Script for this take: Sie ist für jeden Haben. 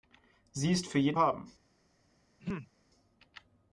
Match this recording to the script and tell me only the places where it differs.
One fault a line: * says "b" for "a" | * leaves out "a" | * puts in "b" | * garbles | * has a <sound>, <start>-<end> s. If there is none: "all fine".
* has a throat clearing, 2.4-2.7 s